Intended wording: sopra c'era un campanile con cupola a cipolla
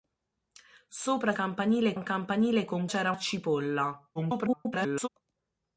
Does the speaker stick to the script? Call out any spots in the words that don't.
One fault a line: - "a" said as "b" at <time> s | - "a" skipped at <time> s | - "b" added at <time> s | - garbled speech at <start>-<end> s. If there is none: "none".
- "c'era" said as "campanile" at 1.3 s
- "cupola" said as "c'era" at 2.9 s
- garbled speech at 4.2-5.1 s